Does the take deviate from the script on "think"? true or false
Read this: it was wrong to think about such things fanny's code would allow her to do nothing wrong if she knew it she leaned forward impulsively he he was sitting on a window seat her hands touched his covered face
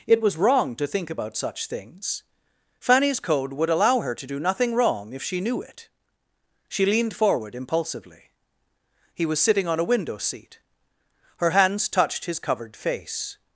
false